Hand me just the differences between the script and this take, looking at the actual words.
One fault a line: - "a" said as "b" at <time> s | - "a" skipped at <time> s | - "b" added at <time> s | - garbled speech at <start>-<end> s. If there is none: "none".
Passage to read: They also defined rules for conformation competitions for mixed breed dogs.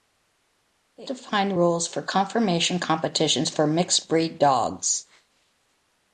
- "also" skipped at 1.1 s